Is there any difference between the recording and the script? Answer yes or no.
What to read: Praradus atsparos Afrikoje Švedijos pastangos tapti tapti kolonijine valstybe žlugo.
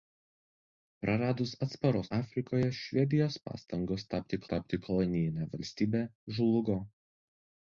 no